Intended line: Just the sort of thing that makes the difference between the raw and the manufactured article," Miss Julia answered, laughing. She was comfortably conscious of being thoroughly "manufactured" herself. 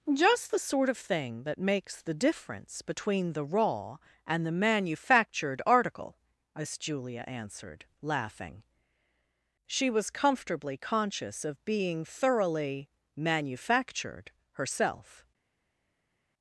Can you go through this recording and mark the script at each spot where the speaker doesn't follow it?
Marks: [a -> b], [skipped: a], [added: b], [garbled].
Just the sort of thing that makes the difference between the raw and the manufactured article," Miss Julia answered, laughing. She was comfortably conscious of being thoroughly "manufactured" herself.